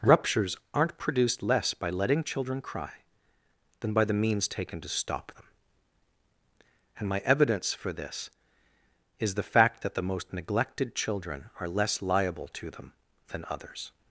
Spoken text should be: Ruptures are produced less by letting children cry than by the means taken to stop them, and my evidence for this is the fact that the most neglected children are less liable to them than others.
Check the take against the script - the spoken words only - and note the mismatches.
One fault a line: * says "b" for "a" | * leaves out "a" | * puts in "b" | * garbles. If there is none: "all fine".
* says "aren't" for "are"